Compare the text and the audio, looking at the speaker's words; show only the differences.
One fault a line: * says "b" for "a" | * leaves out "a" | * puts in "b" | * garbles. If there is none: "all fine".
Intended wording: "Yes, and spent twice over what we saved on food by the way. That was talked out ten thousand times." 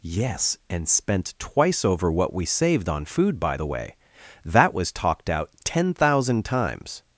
all fine